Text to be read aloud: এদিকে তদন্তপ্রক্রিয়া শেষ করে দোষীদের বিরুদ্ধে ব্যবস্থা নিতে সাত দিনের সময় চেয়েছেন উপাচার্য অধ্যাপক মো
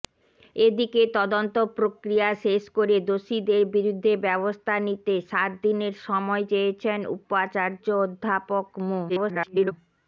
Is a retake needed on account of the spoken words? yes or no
yes